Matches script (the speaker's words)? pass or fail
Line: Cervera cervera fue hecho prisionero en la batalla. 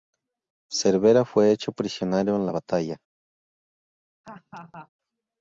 fail